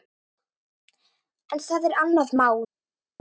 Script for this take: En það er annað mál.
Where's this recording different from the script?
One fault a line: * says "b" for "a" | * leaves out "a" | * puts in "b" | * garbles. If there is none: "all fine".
all fine